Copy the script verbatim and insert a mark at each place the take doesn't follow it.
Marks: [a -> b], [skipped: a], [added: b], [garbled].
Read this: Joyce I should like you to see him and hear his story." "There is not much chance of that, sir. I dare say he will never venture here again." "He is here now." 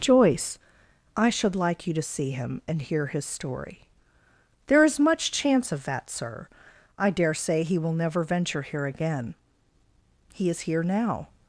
Joyce I should like you to see him and hear his story." "There is [skipped: not] much chance of that, sir. I dare say he will never venture here again." "He is here now."